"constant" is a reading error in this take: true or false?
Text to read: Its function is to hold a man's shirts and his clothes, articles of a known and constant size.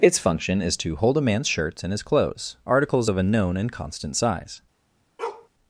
false